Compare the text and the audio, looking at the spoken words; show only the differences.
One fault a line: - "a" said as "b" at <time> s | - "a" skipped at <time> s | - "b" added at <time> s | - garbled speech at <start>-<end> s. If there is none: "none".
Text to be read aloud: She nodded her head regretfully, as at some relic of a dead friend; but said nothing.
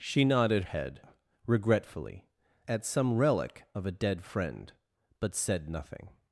- "her" skipped at 0.6 s
- "as" skipped at 2.3 s